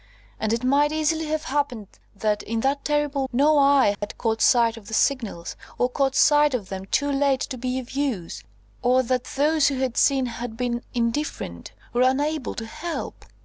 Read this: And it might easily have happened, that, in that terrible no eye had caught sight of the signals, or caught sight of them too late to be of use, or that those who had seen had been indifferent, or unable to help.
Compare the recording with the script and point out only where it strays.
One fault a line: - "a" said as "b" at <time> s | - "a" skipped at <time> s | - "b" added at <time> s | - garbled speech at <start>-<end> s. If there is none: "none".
none